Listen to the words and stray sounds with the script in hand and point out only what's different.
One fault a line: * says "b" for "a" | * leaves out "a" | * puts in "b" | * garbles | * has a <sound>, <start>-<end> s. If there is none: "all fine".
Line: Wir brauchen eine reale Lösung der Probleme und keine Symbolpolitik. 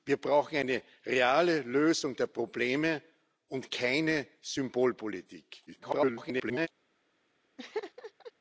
* garbles
* has a laugh, 7.6-8.3 s